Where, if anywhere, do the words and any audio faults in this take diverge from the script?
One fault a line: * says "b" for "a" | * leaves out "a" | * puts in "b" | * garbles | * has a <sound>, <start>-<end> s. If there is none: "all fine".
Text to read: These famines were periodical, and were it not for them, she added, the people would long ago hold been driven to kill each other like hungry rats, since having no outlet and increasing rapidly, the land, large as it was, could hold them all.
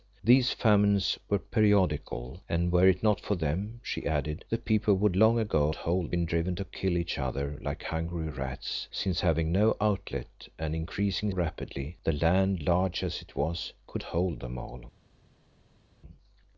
all fine